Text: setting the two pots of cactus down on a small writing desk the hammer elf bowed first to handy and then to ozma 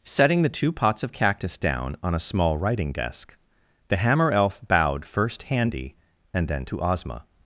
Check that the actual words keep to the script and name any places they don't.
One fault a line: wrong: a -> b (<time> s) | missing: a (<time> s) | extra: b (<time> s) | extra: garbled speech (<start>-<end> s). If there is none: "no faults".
missing: to (5.4 s)